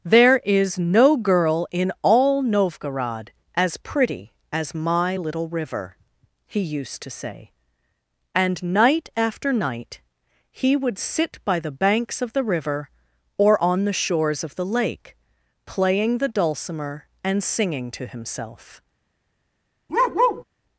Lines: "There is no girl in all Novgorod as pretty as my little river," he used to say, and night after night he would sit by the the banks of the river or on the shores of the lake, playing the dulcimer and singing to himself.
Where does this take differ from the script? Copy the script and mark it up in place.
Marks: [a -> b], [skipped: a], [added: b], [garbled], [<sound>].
"There is no girl in all Novgorod as pretty as my little river," he used to say, and night after night he would sit by the [skipped: the] banks of the river or on the shores of the lake, playing the dulcimer and singing to himself. [bark]